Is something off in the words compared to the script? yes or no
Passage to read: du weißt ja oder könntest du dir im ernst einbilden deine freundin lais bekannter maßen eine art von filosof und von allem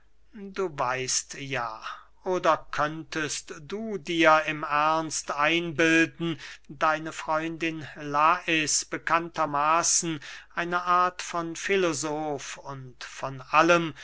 no